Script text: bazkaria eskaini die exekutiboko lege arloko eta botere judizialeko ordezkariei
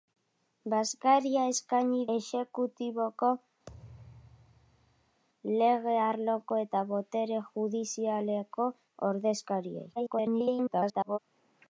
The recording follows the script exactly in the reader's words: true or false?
false